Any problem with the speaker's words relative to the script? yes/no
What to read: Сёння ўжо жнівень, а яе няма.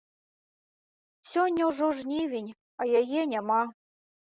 no